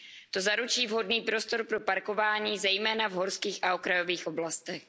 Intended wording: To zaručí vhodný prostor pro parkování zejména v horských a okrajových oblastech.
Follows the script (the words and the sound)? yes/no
yes